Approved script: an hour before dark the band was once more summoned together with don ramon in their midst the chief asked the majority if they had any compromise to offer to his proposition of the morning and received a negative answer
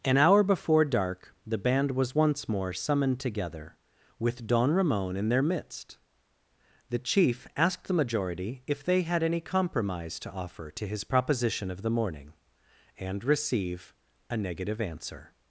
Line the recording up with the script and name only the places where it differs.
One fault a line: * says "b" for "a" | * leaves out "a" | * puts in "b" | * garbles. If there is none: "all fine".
* says "receive" for "received"